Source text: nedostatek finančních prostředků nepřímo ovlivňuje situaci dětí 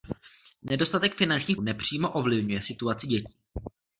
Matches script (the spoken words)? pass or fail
fail